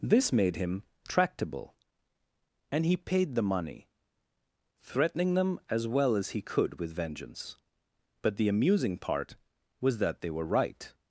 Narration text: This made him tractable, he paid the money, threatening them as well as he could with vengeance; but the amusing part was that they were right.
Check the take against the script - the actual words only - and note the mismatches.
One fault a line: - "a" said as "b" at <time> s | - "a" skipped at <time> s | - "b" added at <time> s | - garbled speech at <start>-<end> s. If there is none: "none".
- "and" added at 2.7 s